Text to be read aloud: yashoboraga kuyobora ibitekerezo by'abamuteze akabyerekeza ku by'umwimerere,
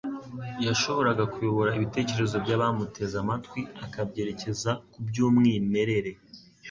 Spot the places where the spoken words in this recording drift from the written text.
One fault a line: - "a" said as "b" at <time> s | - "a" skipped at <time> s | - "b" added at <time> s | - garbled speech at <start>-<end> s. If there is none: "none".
- "amatwi" added at 3.2 s